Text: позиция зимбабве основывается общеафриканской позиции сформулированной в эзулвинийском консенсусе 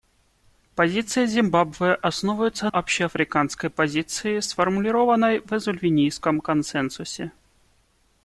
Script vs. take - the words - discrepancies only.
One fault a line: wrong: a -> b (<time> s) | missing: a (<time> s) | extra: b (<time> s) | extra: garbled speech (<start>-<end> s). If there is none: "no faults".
no faults